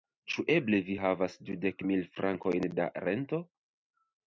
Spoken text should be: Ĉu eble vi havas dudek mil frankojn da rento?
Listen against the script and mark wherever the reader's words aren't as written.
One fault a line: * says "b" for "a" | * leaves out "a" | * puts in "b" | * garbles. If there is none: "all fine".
all fine